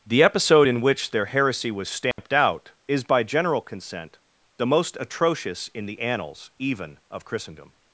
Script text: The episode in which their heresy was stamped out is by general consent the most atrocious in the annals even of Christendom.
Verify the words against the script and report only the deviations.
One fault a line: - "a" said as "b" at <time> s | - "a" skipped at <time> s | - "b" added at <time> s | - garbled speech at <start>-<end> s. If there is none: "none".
none